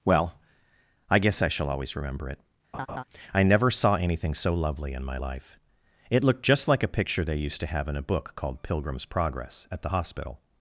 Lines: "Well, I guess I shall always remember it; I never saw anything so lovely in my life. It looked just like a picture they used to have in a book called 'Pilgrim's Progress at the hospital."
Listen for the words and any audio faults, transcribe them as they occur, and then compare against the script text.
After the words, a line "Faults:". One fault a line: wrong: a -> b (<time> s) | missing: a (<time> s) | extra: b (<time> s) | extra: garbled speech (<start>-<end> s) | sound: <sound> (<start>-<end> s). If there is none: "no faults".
"Well, I guess I shall always remember it; I never saw anything so lovely in my life. It looked just like a picture they used to have in a book called 'Pilgrim's Progress at the hospital."
Faults:
sound: laugh (2.7-3.0 s)